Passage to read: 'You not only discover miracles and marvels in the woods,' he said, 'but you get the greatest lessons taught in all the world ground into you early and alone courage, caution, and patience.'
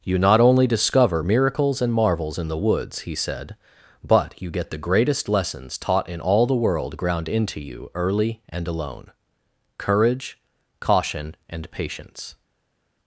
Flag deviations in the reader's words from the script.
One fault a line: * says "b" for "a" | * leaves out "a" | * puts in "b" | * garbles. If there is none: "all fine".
all fine